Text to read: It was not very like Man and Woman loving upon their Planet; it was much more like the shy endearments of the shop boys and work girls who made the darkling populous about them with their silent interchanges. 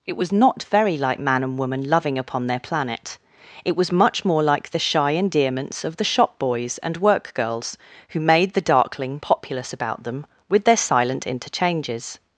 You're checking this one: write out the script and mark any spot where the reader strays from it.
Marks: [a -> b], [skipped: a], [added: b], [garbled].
It was not very like Man and Woman loving upon their Planet; it was much more like the shy endearments of the shop boys and work girls who made the darkling populous about them with their silent interchanges.